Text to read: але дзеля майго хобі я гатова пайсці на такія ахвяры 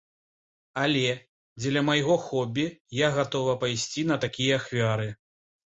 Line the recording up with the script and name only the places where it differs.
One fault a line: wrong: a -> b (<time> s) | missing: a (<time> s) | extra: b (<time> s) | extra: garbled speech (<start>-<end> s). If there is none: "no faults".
no faults